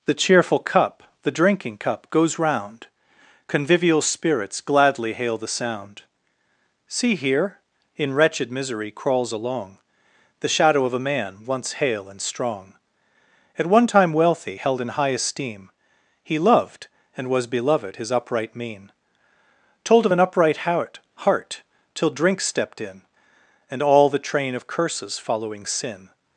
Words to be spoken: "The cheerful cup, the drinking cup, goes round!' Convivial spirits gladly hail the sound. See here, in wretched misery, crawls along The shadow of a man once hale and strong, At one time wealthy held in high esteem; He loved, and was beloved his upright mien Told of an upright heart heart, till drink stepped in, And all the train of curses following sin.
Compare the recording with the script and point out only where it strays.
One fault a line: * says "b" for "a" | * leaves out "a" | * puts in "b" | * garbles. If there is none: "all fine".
all fine